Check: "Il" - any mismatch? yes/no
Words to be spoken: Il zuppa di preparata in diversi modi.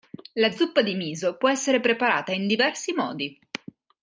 yes